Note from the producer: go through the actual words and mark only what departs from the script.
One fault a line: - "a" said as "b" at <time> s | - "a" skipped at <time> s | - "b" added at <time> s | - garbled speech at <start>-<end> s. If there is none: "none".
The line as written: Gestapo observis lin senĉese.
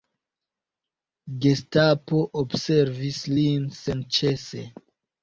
none